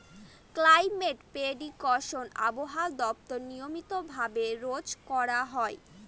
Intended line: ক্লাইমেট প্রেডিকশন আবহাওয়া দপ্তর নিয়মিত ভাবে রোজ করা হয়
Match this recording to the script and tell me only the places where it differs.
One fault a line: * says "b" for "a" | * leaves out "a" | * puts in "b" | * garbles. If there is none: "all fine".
all fine